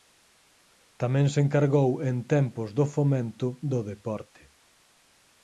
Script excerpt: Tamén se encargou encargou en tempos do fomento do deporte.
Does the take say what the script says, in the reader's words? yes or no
no